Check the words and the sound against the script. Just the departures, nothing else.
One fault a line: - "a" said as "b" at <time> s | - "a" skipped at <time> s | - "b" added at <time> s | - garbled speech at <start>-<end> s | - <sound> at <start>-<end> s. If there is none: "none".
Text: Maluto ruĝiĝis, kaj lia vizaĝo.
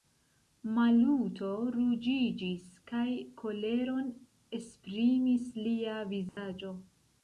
- "koleron esprimis" added at 3.5 s
- dropout at 6.3-6.4 s